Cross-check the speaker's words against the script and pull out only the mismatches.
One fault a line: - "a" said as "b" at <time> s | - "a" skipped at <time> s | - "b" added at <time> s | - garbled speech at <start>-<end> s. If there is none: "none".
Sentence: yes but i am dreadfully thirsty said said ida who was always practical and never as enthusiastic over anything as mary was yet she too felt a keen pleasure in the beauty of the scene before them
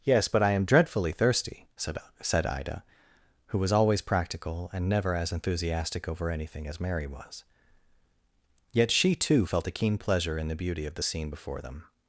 none